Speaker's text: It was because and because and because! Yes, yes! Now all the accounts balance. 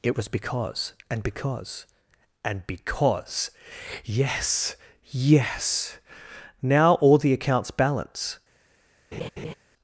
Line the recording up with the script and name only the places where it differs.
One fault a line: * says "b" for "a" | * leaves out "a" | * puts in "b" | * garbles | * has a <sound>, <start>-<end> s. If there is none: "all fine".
* has a laugh, 9.1-9.5 s